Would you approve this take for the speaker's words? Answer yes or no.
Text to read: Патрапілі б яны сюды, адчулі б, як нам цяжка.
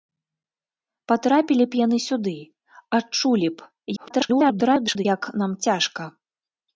no